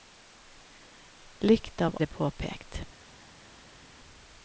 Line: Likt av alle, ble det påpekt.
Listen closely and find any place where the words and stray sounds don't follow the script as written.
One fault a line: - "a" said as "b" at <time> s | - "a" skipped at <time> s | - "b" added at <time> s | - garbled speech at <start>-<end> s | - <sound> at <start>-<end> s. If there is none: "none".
- "alle ble" skipped at 2.0 s